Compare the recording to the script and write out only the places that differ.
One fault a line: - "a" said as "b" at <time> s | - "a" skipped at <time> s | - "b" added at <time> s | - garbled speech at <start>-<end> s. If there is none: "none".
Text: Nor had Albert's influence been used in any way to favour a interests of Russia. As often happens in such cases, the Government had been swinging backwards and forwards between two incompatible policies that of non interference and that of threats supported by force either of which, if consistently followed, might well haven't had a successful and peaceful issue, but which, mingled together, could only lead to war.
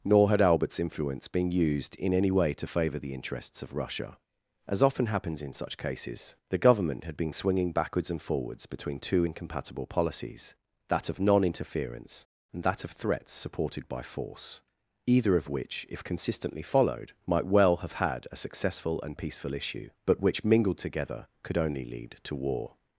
- "a" said as "the" at 3.0 s
- "haven't" said as "have" at 17.8 s